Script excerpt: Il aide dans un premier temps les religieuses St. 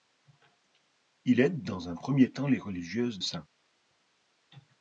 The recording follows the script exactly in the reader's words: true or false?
true